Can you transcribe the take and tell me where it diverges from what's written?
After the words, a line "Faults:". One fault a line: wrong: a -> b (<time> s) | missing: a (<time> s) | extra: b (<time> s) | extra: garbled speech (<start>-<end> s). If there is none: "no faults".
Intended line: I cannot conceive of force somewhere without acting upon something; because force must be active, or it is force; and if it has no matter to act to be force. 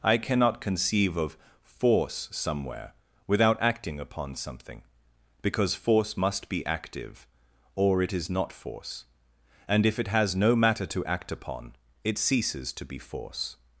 I cannot conceive of force somewhere without acting upon something; because force must be active, or it is not force; and if it has no matter to act upon, it ceases to be force.
Faults:
extra: not (8.3 s)
extra: upon it ceases (11.3 s)